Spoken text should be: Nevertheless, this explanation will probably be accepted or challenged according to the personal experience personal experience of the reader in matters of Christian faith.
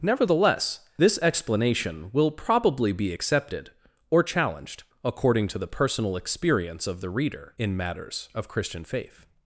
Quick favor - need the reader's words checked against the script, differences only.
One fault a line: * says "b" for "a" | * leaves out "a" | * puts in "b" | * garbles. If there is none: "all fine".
* leaves out "personal experience"